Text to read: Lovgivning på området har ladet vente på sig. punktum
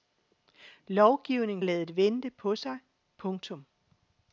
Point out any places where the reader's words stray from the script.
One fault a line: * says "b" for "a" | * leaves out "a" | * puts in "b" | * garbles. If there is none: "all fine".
* leaves out "på området har"